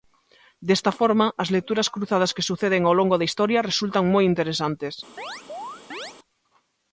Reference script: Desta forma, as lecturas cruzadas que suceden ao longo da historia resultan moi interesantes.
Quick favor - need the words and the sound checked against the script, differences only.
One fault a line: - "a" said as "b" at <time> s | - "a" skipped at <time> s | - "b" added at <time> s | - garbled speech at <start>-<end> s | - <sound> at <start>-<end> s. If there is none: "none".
- chirp at 5.2-6.1 s